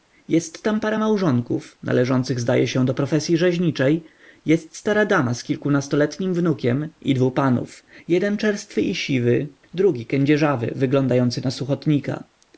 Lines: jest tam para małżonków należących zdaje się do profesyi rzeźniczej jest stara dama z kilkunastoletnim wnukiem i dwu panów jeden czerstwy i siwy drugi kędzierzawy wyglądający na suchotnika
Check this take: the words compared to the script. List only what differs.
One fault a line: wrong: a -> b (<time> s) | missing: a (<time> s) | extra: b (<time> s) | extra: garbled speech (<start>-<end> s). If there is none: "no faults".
no faults